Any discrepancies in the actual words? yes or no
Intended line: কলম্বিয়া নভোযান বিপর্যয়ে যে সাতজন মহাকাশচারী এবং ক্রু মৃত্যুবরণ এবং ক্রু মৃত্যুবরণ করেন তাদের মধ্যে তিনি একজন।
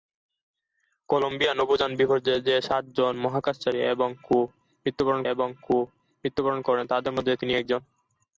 no